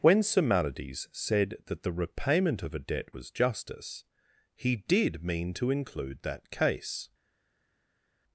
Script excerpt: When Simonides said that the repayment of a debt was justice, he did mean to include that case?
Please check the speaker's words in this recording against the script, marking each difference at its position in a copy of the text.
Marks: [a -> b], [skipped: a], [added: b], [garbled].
When Simonides said that the repayment of a debt was justice, he did mean to include that case?